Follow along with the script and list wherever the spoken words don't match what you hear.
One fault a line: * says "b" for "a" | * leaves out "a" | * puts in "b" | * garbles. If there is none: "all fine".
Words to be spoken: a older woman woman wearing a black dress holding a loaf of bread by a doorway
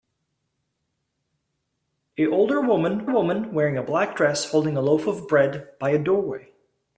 all fine